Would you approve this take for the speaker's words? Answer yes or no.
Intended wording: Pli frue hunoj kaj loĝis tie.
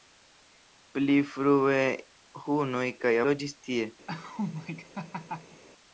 yes